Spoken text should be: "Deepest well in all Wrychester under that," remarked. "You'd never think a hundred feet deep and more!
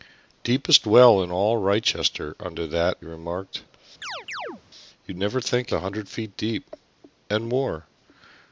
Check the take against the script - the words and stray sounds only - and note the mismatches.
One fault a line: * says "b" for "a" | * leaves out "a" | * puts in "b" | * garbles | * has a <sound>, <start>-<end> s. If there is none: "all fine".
* has a chirp, 4.0-4.6 s